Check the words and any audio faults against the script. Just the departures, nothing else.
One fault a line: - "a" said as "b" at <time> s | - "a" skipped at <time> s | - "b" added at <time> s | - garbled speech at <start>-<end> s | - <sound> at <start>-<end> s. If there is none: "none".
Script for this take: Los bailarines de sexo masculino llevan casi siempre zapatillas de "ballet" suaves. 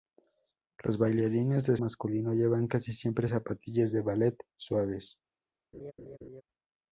- "sexo" skipped at 1.8 s
- laugh at 5.7-6.4 s